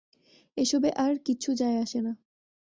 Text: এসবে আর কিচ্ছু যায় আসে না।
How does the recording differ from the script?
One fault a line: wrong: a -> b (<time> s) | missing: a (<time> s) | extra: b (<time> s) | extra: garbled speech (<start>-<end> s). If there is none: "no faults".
no faults